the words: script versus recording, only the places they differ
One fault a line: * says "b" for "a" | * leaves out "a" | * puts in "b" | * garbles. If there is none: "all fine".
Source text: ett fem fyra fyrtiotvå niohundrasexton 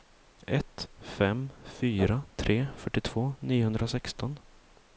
* puts in "tre"